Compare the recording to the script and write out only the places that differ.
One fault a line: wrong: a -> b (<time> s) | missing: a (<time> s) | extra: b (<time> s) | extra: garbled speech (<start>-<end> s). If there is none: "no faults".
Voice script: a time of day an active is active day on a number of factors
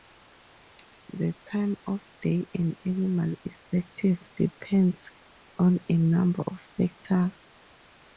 wrong: a -> the (1.1 s)
wrong: active -> animal (2.8 s)
wrong: day -> depends (4.3 s)